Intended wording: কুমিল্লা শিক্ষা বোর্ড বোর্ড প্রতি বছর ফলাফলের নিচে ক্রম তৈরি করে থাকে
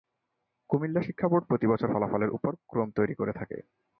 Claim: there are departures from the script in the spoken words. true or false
true